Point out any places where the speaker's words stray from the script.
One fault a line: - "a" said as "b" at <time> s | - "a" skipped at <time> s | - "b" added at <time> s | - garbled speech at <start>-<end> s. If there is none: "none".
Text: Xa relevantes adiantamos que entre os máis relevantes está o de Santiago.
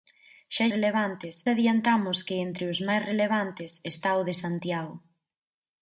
none